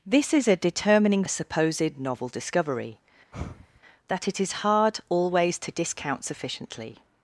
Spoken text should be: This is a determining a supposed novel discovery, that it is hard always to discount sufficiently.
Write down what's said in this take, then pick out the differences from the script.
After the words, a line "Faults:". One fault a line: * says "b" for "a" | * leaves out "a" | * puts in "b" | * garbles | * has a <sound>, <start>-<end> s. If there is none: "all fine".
This is a determining a supposed novel discovery, that it is hard always to discount sufficiently.
Faults:
* has a sigh, 3.3-3.8 s